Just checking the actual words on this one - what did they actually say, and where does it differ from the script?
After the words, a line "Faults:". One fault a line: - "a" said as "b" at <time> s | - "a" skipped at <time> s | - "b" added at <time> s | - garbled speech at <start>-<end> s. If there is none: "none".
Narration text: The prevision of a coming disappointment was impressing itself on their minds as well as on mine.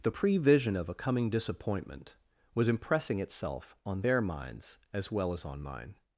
The prevision of a coming disappointment was impressing itself on their minds as well as on mine.
Faults:
none